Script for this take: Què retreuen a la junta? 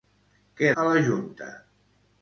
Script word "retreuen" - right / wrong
wrong